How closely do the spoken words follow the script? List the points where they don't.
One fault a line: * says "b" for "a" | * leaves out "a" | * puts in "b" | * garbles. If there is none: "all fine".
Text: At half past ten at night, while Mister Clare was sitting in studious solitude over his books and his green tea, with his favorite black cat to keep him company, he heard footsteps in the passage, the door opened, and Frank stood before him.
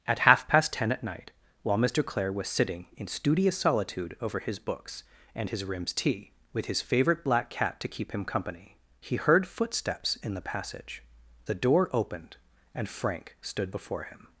* says "rims" for "green"